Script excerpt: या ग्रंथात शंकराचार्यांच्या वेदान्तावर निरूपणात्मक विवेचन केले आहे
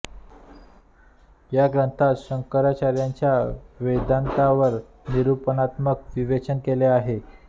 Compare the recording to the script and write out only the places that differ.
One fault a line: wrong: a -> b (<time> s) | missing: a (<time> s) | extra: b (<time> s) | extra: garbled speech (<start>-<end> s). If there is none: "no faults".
no faults